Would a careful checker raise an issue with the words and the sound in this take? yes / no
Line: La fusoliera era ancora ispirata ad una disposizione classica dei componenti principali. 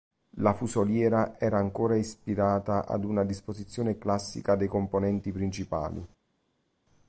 no